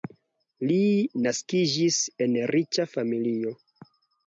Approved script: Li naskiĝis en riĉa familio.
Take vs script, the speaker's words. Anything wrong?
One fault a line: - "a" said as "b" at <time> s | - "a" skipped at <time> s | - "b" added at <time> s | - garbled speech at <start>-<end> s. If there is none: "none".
none